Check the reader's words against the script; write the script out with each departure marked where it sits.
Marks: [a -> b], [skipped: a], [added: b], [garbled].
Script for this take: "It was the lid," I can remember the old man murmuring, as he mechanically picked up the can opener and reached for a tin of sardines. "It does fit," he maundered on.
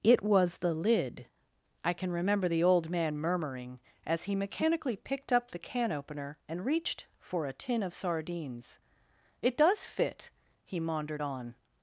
"It was the lid," I can remember the old man murmuring, as he mechanically picked up the can opener and reached for a tin of sardines. "It does fit," he maundered on.